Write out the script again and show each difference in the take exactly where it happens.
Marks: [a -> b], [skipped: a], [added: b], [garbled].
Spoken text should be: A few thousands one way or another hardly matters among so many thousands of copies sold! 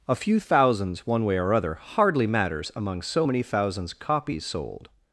A few thousands one way or [another -> other] hardly matters among so many thousands [skipped: of] copies sold!